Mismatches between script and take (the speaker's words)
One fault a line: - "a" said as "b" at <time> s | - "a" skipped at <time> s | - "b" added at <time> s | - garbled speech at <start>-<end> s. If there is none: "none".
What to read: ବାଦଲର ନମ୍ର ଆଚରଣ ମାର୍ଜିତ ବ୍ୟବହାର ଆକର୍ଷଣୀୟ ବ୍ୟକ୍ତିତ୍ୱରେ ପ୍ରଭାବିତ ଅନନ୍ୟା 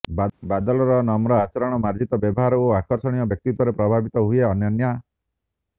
- "ଓ" added at 2.6 s
- "ହୁଏ" added at 4.3 s